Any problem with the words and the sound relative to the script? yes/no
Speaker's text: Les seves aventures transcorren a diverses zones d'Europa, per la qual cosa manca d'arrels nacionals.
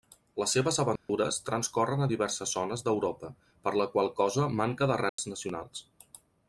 yes